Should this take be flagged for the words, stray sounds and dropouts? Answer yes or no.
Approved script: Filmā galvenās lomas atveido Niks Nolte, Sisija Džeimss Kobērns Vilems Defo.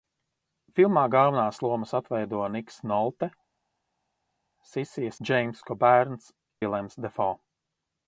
no